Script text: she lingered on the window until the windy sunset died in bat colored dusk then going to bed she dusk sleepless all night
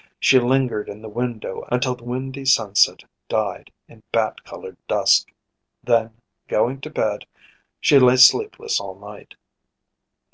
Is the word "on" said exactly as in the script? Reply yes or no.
no